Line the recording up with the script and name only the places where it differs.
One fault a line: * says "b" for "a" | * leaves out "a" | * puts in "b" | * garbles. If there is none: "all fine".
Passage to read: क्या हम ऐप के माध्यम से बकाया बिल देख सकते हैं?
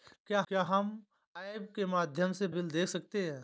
* puts in "क्या"
* leaves out "बकाया"